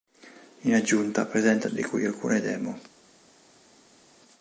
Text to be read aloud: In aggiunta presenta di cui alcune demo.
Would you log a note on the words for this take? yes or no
no